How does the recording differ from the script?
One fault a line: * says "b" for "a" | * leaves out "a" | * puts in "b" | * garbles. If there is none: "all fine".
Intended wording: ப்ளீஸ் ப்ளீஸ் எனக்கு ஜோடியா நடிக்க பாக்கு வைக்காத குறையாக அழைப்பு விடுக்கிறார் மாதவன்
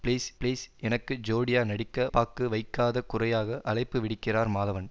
all fine